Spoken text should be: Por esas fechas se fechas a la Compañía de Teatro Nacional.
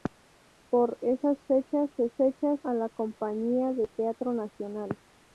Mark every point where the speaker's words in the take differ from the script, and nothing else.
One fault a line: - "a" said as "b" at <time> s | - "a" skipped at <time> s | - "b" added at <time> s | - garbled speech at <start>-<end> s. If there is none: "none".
none